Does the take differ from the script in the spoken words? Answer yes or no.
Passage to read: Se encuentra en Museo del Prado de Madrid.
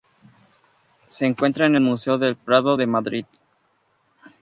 no